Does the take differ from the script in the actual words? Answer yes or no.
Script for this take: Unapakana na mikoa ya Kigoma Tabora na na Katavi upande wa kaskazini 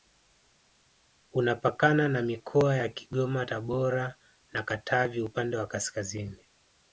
yes